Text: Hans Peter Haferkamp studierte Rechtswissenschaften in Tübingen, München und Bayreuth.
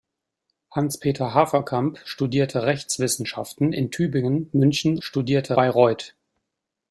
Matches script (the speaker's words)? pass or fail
fail